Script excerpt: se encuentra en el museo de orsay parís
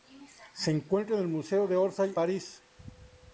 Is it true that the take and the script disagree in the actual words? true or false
false